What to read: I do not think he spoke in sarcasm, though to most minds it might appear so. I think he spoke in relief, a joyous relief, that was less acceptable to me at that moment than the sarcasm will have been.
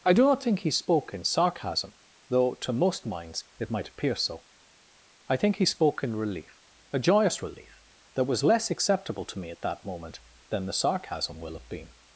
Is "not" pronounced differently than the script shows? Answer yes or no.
no